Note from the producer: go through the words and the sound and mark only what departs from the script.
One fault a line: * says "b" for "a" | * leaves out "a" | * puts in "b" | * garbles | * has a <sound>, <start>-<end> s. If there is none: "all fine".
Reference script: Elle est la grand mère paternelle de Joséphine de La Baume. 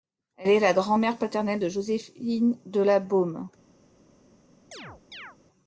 * has a chirp, 4.7-5.4 s